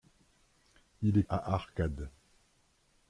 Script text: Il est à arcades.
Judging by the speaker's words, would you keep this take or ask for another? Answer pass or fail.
pass